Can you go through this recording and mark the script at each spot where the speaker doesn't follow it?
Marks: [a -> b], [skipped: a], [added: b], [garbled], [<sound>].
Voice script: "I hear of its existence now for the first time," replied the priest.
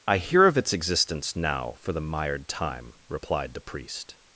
"I hear of its existence now for the [first -> mired] time," replied the priest.